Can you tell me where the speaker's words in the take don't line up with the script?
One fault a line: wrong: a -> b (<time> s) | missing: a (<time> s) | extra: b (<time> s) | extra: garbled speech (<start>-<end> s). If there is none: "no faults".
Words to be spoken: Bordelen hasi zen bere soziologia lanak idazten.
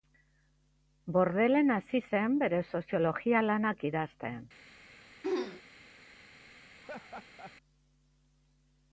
no faults